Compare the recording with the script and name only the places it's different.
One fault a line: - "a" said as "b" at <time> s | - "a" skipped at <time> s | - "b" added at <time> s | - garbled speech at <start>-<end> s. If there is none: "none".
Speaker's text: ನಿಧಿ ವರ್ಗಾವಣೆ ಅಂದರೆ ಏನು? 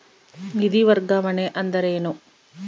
none